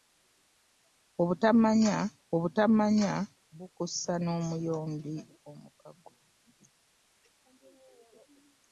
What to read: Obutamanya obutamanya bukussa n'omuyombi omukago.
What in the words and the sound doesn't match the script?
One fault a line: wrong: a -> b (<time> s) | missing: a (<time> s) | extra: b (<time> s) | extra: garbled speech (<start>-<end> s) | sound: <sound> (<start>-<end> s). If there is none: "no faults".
no faults